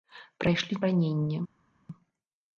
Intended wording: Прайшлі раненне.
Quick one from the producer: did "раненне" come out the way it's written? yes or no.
yes